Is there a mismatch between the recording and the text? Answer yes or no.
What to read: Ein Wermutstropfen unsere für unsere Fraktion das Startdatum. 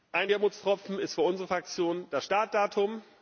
yes